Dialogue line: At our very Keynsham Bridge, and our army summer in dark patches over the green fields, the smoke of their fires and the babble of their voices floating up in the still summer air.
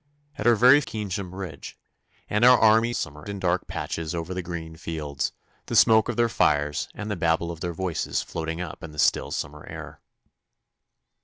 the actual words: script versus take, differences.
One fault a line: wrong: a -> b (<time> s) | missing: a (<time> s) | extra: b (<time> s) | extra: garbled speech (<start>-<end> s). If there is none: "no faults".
no faults